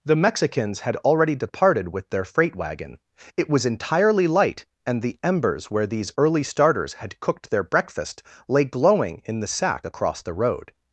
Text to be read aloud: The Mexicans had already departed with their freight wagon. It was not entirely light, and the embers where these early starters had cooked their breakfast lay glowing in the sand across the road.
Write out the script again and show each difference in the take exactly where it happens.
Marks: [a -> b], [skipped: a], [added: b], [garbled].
The Mexicans had already departed with their freight wagon. It was [skipped: not] entirely light, and the embers where these early starters had cooked their breakfast lay glowing in the [sand -> sack] across the road.